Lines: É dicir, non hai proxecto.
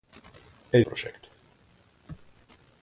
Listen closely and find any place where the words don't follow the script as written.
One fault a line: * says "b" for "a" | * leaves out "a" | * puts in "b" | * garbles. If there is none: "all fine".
* leaves out "dicir non hai"